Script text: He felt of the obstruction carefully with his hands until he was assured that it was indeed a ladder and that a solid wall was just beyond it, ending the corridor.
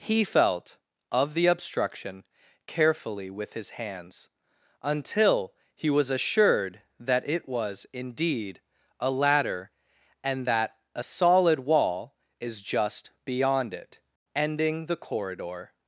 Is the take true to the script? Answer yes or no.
no